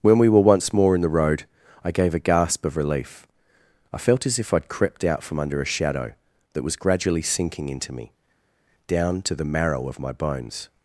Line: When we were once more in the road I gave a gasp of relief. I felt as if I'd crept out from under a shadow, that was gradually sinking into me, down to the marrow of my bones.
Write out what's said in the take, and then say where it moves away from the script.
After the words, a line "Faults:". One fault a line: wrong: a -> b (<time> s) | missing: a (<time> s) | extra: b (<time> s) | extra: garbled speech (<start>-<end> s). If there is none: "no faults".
When we were once more in the road I gave a gasp of relief. I felt as if I'd crept out from under a shadow, that was gradually sinking into me, down to the marrow of my bones.
Faults:
no faults